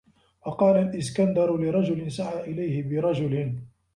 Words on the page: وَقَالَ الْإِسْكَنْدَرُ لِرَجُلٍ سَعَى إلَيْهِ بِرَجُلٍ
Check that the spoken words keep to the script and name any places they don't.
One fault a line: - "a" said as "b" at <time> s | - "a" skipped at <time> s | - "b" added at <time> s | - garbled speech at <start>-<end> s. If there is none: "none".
none